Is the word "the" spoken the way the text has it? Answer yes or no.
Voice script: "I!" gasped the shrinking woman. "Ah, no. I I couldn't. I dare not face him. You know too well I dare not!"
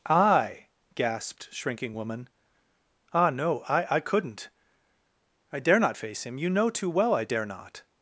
no